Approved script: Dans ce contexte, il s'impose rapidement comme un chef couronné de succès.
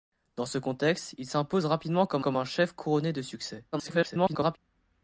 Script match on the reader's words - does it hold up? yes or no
no